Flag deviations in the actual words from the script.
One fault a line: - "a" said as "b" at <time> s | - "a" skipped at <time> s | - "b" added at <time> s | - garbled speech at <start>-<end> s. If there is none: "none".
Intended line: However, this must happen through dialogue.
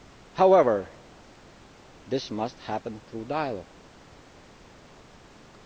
none